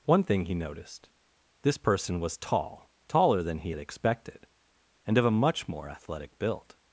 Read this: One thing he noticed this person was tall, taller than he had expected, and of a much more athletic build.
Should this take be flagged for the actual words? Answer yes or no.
no